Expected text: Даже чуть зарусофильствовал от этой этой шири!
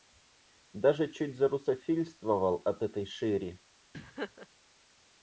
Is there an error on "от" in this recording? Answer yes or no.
no